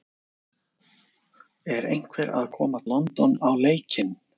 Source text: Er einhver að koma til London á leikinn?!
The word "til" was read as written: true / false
false